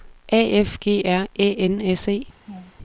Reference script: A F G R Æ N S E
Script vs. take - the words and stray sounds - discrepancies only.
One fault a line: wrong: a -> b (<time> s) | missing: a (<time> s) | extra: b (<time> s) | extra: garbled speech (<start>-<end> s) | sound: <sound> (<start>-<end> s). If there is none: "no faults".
sound: laugh (2.5-2.7 s)